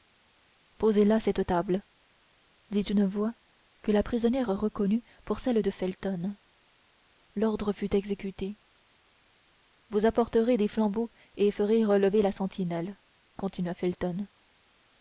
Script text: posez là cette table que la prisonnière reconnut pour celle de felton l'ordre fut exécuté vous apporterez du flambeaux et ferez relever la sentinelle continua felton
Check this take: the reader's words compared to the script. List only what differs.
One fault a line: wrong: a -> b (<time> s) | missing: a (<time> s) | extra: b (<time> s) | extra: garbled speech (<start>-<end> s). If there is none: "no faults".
extra: dit une voix (2.7 s)
wrong: du -> des (10.6 s)